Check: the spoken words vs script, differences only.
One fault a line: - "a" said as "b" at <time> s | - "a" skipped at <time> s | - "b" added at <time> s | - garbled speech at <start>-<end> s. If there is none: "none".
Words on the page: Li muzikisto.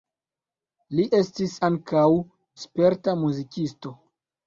- "estis ankaŭ sperta" added at 1.2 s